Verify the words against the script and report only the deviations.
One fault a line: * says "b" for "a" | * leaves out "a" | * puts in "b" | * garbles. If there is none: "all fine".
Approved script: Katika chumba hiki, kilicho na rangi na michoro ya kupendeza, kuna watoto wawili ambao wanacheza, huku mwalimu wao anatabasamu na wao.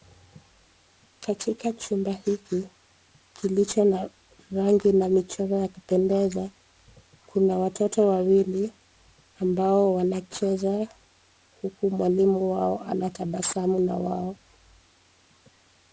all fine